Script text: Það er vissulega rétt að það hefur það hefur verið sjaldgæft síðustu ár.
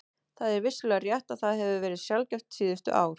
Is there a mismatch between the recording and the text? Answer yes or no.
yes